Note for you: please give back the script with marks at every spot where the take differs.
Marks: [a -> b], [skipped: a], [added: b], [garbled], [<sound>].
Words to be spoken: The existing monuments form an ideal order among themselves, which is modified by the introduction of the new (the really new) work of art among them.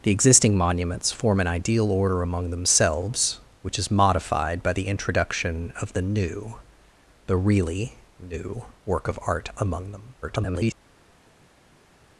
The existing monuments form an ideal order among themselves, which is modified by the introduction of the new (the really new) work of art among them. [garbled]